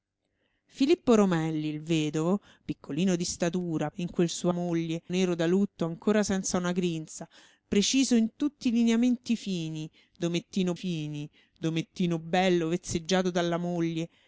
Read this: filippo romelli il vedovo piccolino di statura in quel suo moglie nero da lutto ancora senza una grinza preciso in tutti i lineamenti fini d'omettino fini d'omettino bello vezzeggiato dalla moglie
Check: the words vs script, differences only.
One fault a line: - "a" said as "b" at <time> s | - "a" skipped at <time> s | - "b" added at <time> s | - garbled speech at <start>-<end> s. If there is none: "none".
none